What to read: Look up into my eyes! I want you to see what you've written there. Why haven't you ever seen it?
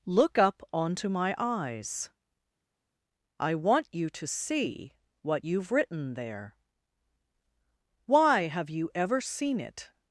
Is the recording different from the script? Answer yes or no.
yes